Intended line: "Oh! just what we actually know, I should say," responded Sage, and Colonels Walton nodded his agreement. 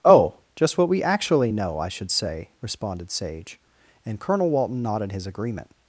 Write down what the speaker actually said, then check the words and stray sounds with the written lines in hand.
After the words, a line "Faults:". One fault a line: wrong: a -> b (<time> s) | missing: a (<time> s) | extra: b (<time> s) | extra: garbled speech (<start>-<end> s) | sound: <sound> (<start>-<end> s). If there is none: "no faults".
"Oh! just what we actually know, I should say," responded Sage, and Colonel Walton nodded his agreement.
Faults:
wrong: Colonels -> Colonel (4.2 s)